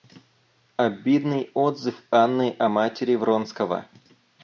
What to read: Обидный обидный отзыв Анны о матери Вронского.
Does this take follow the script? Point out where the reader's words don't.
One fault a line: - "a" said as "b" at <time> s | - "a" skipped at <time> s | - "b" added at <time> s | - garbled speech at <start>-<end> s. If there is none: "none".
- "обидный" skipped at 1.5 s